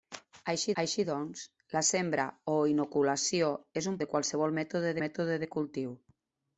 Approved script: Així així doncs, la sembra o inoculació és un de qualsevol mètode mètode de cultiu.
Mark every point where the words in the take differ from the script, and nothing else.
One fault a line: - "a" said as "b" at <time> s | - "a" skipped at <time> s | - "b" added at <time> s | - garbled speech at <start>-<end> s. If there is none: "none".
none